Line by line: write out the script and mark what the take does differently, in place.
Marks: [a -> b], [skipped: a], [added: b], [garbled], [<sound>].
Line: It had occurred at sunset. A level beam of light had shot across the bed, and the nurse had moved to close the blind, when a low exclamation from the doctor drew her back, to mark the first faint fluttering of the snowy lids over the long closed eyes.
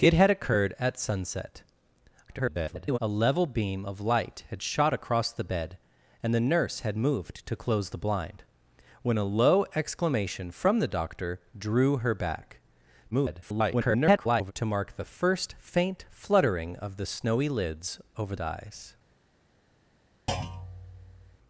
It had occurred at sunset. [garbled] A level beam of light had shot across the bed, and the nurse had moved to close the blind, when a low exclamation from the doctor drew her back, [garbled] to mark the first faint fluttering of the snowy lids over [skipped: the long closed] eyes. [thud]